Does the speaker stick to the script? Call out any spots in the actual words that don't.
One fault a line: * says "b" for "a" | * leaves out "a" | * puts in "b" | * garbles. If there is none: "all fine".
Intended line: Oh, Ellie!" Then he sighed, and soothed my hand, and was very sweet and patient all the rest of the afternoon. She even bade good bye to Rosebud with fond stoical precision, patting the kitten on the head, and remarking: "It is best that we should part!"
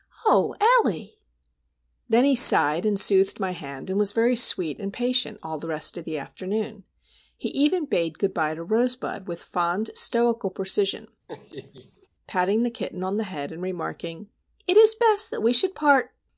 * says "He" for "She"